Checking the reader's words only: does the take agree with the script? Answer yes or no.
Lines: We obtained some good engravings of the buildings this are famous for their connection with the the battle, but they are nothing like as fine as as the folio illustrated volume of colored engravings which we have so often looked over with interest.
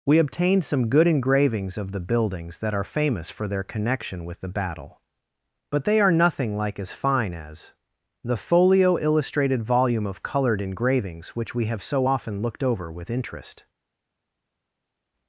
no